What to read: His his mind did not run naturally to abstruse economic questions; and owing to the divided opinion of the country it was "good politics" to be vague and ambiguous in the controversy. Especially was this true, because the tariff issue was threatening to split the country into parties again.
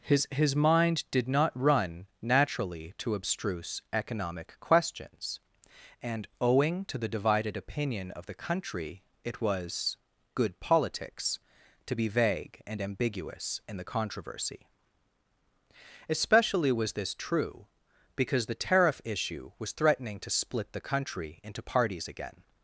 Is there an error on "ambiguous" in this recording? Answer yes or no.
no